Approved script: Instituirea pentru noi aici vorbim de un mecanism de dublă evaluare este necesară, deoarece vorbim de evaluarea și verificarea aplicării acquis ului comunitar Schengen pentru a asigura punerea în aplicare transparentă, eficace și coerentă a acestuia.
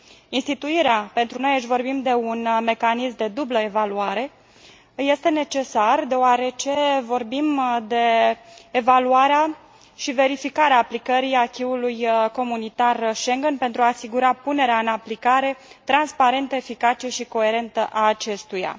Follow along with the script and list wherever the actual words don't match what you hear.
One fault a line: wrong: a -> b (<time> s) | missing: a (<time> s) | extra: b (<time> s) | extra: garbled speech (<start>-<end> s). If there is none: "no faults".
no faults